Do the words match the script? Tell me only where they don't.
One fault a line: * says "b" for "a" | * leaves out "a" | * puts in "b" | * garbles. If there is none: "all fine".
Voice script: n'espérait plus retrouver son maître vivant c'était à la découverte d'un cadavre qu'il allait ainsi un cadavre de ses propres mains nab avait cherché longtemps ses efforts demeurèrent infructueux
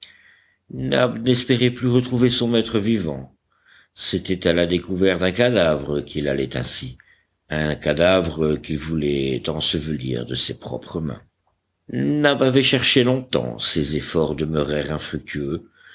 * puts in "qu'il voulait ensevelir"